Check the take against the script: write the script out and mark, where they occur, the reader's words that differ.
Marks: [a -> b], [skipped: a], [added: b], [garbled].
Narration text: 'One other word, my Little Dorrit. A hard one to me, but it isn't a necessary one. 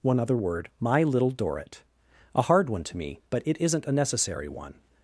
'One other word, my Little Dorrit. A hard one to me, but it isn't a necessary one.